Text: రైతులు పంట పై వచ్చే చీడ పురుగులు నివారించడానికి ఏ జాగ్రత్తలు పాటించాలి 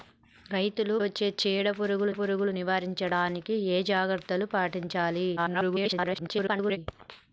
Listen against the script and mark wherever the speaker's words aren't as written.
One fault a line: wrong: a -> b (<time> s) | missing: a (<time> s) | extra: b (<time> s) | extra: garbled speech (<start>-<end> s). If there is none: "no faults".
missing: పంట పై (0.9 s)
extra: పురుగులు (2.1 s)
extra: garbled speech (5.4-6.8 s)